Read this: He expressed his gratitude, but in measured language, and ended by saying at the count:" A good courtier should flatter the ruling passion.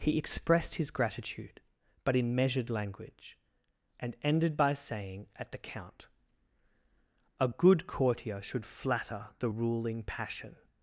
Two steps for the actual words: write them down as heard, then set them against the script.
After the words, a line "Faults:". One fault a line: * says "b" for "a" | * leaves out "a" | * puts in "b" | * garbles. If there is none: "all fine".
He expressed his gratitude, but in measured language, and ended by saying at the count:" A good courtier should flatter the ruling passion.
Faults:
all fine